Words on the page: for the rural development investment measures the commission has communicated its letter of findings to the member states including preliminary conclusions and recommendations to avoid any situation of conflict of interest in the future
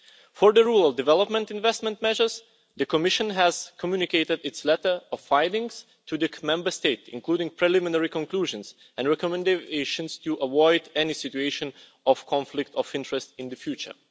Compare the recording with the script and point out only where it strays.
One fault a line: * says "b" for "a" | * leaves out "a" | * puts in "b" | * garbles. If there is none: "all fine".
all fine